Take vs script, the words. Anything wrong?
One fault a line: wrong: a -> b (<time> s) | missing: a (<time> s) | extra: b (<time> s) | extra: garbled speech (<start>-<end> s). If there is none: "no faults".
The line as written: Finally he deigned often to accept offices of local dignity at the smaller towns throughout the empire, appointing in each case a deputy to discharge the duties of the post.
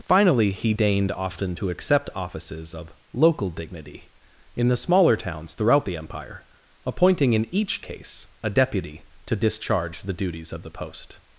wrong: at -> in (4.6 s)